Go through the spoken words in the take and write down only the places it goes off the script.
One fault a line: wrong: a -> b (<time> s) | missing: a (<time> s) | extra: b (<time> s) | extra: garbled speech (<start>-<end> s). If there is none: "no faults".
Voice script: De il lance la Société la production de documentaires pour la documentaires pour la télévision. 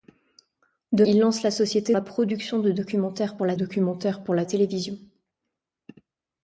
no faults